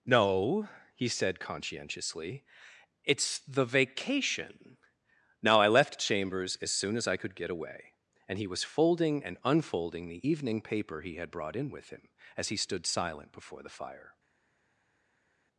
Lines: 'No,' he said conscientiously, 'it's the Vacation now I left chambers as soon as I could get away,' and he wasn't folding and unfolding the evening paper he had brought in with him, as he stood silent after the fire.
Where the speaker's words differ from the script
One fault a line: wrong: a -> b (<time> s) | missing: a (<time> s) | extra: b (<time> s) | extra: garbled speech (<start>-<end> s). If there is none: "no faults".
wrong: wasn't -> was (8.5 s)
wrong: after -> before (13.3 s)